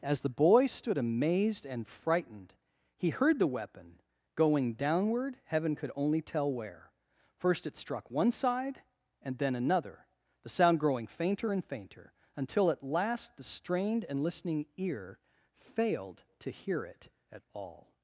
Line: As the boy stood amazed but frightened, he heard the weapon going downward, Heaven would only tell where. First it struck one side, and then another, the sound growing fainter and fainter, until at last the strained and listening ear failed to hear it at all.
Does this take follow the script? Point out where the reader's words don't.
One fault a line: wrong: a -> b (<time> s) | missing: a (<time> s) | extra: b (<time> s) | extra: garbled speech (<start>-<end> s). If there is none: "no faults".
wrong: but -> and (1.6 s)
wrong: would -> could (5.7 s)